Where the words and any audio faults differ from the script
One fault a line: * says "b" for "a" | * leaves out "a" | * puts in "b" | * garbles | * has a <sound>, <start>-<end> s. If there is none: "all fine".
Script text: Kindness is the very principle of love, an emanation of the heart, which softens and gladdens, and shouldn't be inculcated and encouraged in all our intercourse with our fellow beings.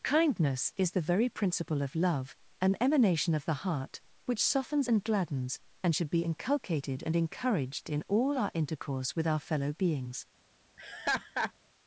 * says "should" for "shouldn't"
* has a laugh, 10.8-11.5 s